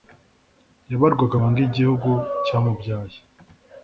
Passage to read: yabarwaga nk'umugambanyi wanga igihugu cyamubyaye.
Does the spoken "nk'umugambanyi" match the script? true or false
false